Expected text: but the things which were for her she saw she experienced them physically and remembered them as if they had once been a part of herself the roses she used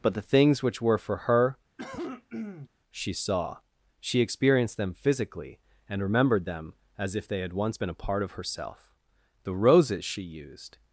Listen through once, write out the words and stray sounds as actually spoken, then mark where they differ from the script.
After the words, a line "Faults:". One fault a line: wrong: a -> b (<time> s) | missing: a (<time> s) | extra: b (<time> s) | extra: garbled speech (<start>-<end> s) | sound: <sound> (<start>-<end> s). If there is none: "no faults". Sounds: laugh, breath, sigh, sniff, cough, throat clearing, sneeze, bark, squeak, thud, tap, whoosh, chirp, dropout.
but the things which were for her she saw she experienced them physically and remembered them as if they had once been a part of herself the roses she used
Faults:
sound: cough (1.8-2.7 s)